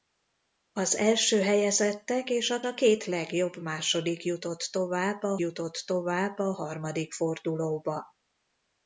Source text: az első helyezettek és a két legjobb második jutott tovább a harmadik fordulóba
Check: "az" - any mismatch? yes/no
no